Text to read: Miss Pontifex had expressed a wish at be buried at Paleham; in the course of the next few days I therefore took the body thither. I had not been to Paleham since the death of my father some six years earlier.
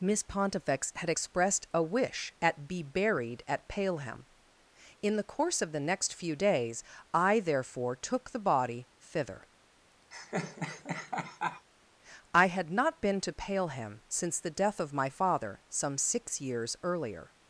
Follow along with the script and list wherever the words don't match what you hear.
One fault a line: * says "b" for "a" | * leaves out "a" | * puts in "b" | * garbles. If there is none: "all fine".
all fine